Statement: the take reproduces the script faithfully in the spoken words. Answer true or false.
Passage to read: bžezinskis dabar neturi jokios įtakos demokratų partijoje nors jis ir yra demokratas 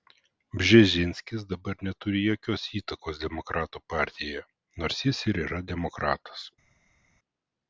true